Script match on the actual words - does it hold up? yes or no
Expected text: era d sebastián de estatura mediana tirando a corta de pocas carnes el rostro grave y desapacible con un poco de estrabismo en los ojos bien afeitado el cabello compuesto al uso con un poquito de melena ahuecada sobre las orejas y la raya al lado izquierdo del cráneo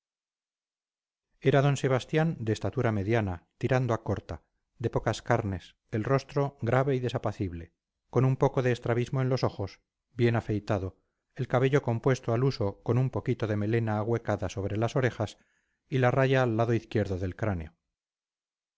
yes